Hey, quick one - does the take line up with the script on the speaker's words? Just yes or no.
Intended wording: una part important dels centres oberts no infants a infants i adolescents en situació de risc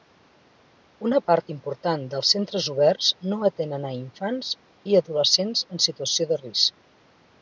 no